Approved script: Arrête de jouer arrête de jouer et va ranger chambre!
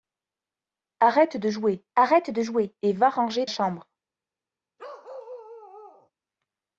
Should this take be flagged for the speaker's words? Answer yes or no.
no